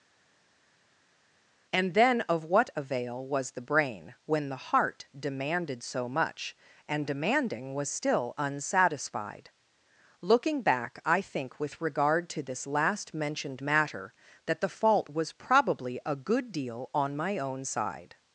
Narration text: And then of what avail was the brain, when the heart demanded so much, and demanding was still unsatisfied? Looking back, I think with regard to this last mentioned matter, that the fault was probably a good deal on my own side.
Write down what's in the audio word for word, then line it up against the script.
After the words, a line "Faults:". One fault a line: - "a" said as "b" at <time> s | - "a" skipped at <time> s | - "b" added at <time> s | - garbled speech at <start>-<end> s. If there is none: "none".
And then of what avail was the brain, when the heart demanded so much, and demanding was still unsatisfied? Looking back, I think with regard to this last mentioned matter, that the fault was probably a good deal on my own side.
Faults:
none